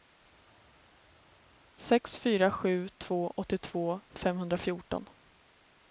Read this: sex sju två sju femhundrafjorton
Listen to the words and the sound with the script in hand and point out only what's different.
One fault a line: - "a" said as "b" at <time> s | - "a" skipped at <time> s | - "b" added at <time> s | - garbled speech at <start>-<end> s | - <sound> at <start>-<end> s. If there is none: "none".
- "fyra" added at 2.2 s
- "sju" said as "åttiotvå" at 3.4 s